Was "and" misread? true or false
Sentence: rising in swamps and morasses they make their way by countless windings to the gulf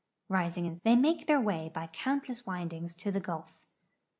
true